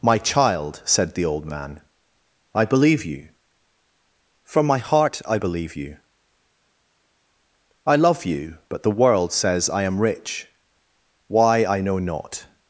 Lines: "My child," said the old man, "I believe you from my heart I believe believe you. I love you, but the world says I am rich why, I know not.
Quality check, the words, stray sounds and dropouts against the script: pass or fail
fail